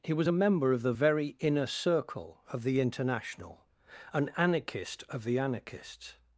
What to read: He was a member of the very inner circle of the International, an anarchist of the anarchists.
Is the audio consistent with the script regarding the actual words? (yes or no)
yes